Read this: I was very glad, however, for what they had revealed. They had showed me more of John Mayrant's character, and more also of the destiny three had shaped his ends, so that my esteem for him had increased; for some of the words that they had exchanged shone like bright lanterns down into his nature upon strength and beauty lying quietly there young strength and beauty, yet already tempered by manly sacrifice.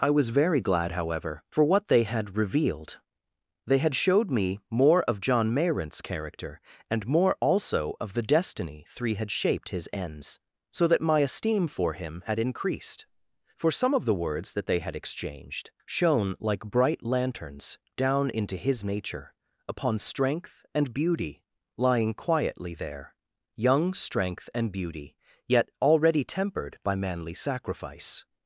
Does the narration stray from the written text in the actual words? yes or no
no